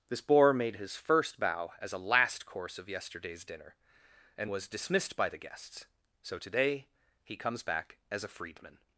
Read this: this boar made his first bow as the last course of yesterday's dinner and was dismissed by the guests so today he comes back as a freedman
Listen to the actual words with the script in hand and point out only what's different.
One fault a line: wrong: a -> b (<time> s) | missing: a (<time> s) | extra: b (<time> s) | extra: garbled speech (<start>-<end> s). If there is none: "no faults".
wrong: the -> a (1.9 s)